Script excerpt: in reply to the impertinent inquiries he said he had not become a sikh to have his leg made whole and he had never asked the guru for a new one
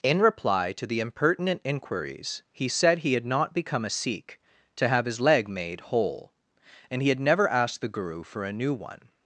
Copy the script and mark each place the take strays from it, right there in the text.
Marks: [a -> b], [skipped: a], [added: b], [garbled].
in reply to the impertinent inquiries he said he had not become a sikh to have his leg made whole and he had never asked the guru for a new one